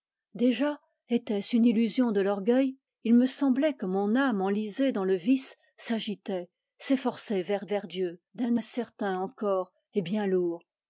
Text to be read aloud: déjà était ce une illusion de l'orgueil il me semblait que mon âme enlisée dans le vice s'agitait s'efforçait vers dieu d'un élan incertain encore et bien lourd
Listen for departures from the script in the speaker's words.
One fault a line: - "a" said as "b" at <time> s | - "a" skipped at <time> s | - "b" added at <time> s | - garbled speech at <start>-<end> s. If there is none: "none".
- "vers" added at 7.6 s
- "élan" skipped at 8.5 s